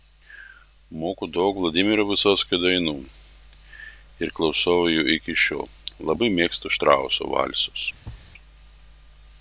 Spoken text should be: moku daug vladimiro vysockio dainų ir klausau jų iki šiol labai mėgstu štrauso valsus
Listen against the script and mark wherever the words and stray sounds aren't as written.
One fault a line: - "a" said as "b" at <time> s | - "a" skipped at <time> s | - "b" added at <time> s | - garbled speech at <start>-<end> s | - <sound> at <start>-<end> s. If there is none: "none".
- thud at 8.0-8.3 s